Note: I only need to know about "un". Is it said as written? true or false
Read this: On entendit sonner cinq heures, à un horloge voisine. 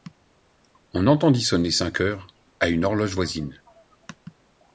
false